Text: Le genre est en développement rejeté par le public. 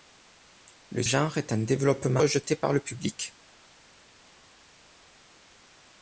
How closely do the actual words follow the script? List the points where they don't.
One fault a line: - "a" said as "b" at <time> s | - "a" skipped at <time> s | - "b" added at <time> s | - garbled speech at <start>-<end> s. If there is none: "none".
none